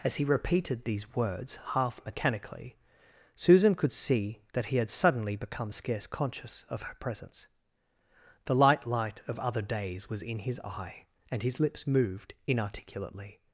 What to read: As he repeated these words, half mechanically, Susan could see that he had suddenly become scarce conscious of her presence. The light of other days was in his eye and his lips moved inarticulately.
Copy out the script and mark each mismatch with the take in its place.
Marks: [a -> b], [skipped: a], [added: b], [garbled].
As he repeated these words, half mechanically, Susan could see that he had suddenly become scarce conscious of her presence. The light [added: light] of other days was in his eye and his lips moved inarticulately.